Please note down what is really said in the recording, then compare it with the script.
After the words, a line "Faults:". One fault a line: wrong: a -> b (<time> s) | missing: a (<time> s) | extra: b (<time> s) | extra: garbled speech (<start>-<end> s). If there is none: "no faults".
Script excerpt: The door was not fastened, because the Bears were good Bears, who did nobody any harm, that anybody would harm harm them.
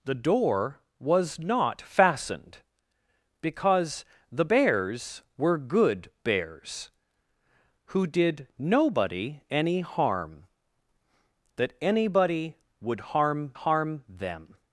The door was not fastened, because the Bears were good Bears, who did nobody any harm, that anybody would harm harm them.
Faults:
no faults